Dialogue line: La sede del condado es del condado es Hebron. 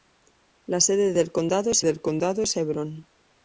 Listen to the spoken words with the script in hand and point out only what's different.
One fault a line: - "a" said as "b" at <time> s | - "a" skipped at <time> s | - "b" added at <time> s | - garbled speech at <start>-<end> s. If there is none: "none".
none